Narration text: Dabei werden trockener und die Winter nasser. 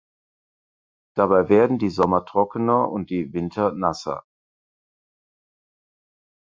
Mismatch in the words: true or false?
true